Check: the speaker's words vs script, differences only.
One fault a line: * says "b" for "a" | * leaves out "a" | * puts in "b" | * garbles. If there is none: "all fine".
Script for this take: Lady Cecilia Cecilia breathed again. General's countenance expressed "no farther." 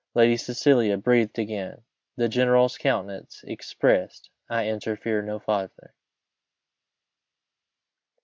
* leaves out "Cecilia"
* puts in "The"
* puts in "I interfere"